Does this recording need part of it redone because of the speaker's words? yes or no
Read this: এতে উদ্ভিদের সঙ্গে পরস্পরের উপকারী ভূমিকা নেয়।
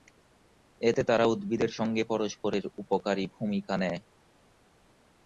yes